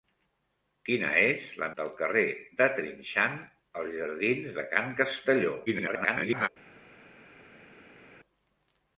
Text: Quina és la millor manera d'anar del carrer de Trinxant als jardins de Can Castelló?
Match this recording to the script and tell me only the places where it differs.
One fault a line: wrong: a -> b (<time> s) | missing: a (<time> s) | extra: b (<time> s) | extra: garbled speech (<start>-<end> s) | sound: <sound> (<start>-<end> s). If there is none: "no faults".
missing: millor manera d'anar (1.7 s)
extra: garbled speech (5.7-6.5 s)